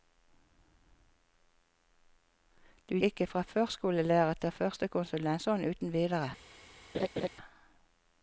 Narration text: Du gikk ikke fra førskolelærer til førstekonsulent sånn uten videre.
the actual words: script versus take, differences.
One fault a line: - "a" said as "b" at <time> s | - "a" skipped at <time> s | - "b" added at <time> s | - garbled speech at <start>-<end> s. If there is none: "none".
- "gikk" skipped at 3.0 s